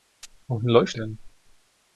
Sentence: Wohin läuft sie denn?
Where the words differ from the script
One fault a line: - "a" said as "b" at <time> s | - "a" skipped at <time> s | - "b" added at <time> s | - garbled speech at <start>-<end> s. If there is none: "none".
- "sie" skipped at 1.0 s